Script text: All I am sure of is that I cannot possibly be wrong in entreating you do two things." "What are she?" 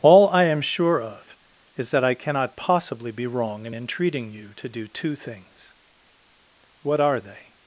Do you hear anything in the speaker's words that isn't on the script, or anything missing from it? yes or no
yes